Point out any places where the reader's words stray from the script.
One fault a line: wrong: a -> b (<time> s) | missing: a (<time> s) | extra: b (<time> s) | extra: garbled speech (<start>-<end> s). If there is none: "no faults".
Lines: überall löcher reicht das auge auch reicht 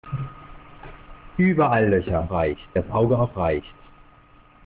no faults